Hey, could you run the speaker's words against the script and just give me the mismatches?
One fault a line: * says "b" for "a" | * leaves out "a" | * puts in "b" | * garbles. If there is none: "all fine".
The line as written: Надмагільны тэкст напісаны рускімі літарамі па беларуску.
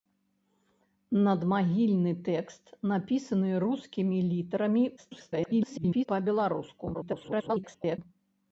* garbles
* garbles